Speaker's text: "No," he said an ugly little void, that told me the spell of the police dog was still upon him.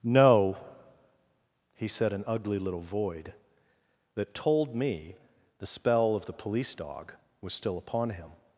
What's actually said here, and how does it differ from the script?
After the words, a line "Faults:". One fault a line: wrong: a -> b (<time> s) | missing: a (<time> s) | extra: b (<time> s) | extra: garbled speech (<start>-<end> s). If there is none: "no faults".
"No," he said an ugly little void, that told me the spell of the police dog was still upon him.
Faults:
no faults